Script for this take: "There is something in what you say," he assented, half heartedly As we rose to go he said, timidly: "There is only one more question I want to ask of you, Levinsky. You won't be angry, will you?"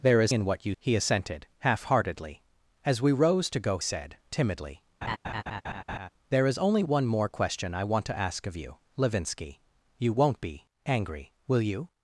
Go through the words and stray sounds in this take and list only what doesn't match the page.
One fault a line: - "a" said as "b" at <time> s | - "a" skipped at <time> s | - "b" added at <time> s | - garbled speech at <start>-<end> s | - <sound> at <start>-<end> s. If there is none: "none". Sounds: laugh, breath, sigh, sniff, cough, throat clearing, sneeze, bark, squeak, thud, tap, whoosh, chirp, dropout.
- "something" skipped at 0.3 s
- "say" skipped at 0.7 s
- "he" skipped at 3.8 s
- laugh at 5.0-6.1 s